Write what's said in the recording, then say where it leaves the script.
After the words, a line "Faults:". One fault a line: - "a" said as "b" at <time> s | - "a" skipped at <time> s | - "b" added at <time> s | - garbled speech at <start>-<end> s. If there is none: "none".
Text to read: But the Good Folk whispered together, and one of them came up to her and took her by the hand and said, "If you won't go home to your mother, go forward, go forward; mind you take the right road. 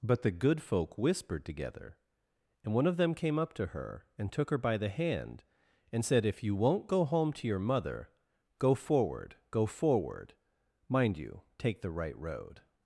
But the Good Folk whispered together, and one of them came up to her and took her by the hand and said, "If you won't go home to your mother, go forward, go forward; mind you take the right road.
Faults:
none